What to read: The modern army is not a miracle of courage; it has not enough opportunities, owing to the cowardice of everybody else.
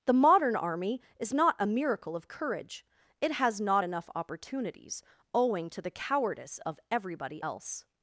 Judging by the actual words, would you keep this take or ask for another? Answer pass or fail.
pass